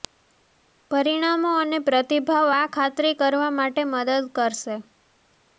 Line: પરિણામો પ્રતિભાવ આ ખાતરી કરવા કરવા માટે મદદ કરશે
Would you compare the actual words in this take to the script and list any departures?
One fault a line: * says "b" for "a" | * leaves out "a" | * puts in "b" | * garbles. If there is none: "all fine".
* puts in "અને"
* leaves out "કરવા"